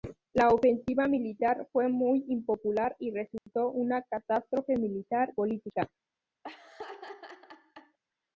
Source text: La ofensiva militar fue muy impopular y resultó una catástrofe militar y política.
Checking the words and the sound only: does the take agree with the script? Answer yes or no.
no